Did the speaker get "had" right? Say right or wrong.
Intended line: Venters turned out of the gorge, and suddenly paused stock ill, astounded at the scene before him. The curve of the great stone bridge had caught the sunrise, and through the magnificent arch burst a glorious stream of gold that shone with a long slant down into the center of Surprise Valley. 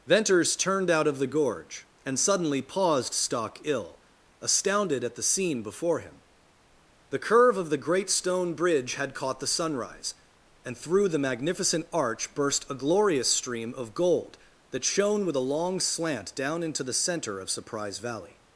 right